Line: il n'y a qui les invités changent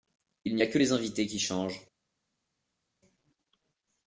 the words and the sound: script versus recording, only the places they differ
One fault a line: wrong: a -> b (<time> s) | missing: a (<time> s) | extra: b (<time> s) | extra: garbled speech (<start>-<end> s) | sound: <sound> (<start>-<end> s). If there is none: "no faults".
wrong: qui -> que (0.7 s)
extra: qui (1.2 s)